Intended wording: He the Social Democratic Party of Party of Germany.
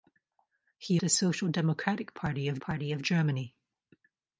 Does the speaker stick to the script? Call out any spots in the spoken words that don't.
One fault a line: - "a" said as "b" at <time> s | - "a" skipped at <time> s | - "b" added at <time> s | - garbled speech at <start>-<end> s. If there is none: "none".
none